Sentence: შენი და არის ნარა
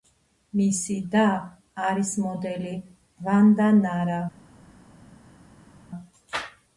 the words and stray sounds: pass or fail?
fail